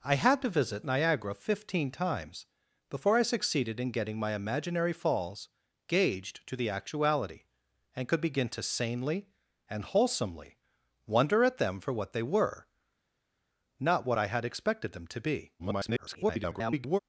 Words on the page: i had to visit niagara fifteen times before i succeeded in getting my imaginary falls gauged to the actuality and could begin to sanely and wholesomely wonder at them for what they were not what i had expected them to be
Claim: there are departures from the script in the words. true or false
true